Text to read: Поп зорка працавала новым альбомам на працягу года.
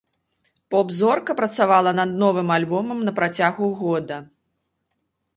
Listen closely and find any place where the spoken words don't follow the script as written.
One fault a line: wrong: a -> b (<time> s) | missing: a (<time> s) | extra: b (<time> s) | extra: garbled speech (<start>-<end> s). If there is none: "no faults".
extra: над (2.0 s)